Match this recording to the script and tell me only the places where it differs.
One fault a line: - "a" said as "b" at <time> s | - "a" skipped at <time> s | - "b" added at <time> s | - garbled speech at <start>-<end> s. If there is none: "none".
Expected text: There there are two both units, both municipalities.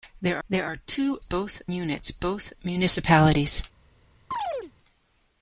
none